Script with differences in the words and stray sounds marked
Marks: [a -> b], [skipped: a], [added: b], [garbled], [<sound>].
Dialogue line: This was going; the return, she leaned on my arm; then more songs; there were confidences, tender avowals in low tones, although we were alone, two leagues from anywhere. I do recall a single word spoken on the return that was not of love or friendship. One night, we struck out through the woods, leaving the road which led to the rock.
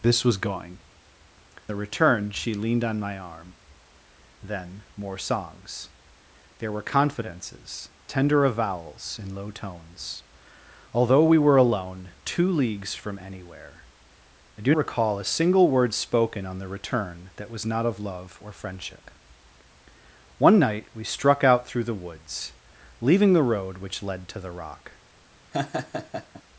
This was going; the return, she leaned on my arm; then more songs; there were confidences, tender avowals in low tones, although we were alone, two leagues from anywhere. I do recall a single word spoken on the return that was not of love or friendship. One night, we struck out through the woods, leaving the road which led to the rock. [laugh]